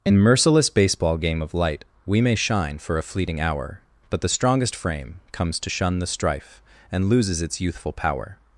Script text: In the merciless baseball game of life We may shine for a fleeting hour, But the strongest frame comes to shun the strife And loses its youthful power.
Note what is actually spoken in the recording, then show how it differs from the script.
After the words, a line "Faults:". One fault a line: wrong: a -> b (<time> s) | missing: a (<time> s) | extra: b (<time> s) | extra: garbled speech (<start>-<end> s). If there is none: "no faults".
In merciless baseball game of light We may shine for a fleeting hour, But the strongest frame comes to shun the strife And loses its youthful power.
Faults:
missing: the (0.2 s)
wrong: life -> light (1.5 s)